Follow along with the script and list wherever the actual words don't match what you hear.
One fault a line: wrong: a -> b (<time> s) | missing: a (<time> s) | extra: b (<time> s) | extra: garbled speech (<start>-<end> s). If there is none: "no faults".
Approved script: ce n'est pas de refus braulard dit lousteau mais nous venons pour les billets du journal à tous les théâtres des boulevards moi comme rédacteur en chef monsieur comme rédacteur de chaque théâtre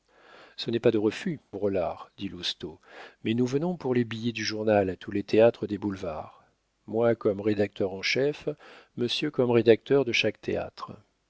no faults